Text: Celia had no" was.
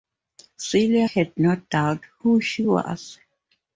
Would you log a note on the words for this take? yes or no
yes